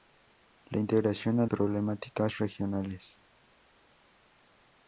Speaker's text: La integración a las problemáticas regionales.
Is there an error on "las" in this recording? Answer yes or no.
yes